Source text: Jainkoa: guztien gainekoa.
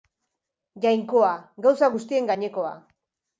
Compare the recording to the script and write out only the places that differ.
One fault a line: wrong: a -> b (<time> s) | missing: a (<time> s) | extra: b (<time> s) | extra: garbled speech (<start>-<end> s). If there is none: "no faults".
extra: gauza (1.7 s)